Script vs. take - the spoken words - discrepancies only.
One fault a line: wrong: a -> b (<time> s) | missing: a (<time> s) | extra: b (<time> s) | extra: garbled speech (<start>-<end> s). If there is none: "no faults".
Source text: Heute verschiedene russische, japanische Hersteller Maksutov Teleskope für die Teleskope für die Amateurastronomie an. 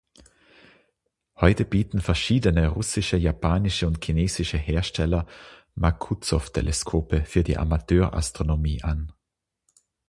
extra: bieten (1.6 s)
extra: und chinesische (3.9 s)
missing: Teleskope für die (7.6 s)